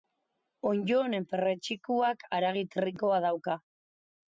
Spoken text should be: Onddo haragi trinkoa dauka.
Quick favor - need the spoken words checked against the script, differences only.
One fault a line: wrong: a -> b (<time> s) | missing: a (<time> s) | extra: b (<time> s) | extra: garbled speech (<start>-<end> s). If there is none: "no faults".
extra: honen perretxikoak (1.0 s)